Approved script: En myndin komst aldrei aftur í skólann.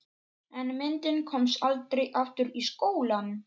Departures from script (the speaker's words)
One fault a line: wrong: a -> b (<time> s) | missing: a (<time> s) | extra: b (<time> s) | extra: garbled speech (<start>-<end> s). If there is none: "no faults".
no faults